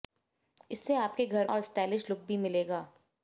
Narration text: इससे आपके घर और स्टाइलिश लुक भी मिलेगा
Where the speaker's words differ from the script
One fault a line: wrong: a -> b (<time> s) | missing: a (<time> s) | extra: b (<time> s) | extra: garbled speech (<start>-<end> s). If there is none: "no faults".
no faults